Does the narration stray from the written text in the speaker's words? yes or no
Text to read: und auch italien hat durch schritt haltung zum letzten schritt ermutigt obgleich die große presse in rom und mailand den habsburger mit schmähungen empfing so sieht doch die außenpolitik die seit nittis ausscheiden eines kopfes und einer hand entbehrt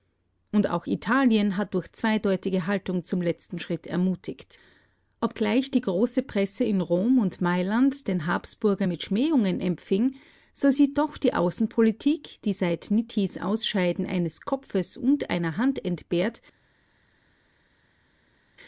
yes